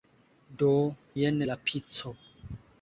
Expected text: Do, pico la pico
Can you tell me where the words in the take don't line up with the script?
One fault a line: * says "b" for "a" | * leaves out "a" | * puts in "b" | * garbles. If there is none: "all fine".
* says "jen" for "pico"